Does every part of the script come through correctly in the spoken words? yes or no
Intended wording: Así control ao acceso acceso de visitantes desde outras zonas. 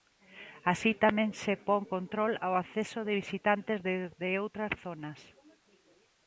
no